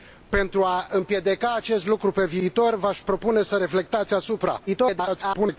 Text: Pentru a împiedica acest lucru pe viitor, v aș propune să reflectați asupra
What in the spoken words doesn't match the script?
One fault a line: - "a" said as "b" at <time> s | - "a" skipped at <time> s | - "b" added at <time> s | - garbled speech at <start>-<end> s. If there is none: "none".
- garbled speech at 4.7-5.6 s